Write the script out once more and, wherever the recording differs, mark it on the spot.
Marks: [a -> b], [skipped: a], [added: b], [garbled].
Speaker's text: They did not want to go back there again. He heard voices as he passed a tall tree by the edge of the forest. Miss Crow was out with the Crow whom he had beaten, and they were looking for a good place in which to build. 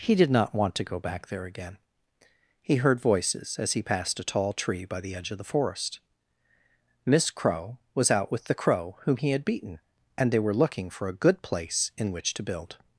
[They -> He] did not want to go back there again. He heard voices as he passed a tall tree by the edge of the forest. Miss Crow was out with the Crow whom he had beaten, and they were looking for a good place in which to build.